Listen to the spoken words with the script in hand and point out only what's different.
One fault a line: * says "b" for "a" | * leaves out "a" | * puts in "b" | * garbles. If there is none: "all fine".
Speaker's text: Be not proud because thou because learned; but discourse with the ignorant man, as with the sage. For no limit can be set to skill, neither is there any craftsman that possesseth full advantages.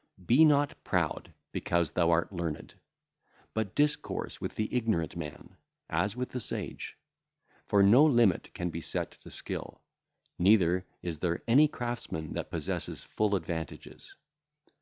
* says "art" for "because"